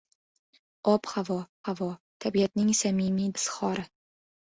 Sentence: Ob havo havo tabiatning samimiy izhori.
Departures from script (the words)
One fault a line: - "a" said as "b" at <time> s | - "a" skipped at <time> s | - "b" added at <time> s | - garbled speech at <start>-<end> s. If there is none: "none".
none